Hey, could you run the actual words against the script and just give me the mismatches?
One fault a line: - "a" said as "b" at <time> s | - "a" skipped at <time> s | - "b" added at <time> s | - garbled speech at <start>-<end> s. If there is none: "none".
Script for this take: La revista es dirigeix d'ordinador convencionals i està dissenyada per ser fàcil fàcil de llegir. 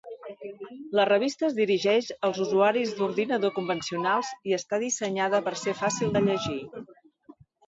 - "als usuaris" added at 2.3 s
- "fàcil" skipped at 6.2 s